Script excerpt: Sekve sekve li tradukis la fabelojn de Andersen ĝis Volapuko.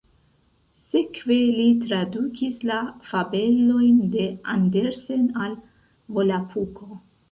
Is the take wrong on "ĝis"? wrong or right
wrong